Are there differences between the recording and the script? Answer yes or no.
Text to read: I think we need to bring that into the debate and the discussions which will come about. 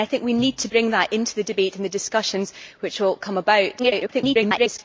yes